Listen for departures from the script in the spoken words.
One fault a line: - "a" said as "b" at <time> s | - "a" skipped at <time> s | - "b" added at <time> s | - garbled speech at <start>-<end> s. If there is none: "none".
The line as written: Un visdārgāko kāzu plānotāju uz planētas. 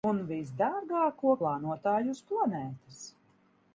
- "kāzu" skipped at 1.3 s